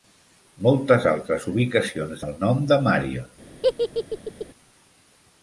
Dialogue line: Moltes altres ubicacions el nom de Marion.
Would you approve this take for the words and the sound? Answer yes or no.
no